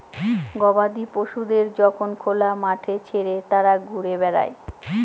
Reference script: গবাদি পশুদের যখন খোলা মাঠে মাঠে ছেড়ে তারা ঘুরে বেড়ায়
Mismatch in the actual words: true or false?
true